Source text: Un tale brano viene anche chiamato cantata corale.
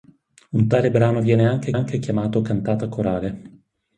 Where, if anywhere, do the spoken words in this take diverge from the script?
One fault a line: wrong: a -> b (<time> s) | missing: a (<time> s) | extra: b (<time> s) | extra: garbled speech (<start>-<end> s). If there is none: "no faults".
extra: anche (1.7 s)